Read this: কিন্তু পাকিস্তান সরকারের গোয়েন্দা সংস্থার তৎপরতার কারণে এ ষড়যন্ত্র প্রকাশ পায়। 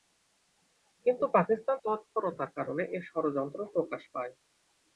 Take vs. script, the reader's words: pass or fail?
fail